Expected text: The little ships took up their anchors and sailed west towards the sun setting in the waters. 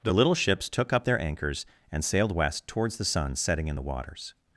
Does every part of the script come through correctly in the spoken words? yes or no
yes